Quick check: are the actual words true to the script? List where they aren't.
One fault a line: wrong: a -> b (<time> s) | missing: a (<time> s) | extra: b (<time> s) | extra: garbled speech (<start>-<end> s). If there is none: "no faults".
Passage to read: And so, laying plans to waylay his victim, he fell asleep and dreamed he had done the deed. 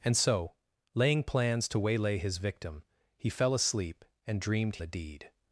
missing: he had done (4.8 s)